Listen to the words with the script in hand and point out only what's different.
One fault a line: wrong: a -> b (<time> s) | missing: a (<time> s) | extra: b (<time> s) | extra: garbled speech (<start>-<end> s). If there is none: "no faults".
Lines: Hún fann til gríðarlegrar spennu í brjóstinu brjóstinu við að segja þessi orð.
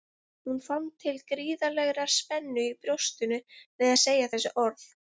missing: brjóstinu (3.4 s)